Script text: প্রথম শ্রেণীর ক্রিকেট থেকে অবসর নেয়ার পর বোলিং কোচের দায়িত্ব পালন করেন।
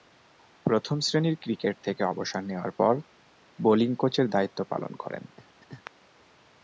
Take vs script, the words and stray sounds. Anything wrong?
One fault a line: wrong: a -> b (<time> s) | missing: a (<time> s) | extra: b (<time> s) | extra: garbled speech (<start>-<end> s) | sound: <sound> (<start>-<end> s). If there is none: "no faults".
sound: laugh (5.4-5.9 s)